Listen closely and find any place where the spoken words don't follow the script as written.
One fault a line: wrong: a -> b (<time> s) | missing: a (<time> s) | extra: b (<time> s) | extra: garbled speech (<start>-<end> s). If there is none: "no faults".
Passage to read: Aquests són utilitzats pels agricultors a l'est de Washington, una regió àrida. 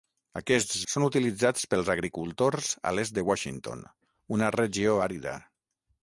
no faults